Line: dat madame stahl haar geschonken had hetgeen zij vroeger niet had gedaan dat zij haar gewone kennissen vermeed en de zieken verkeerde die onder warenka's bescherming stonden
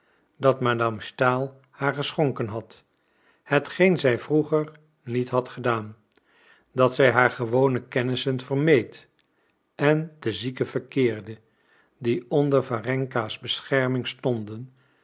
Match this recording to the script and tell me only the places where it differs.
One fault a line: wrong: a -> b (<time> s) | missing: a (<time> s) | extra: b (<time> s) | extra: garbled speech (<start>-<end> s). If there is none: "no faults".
no faults